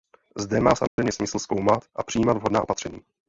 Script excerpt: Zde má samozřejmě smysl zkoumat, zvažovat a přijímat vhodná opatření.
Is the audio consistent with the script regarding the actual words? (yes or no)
no